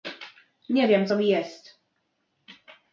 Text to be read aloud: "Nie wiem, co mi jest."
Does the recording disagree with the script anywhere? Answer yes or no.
no